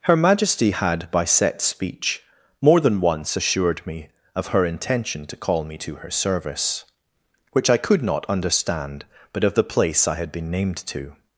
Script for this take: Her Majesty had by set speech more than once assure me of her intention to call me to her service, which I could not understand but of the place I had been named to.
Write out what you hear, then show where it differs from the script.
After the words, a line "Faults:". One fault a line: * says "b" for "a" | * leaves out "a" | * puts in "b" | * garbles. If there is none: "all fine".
Her Majesty had by set speech more than once assured me of her intention to call me to her service, which I could not understand but of the place I had been named to.
Faults:
* says "assured" for "assure"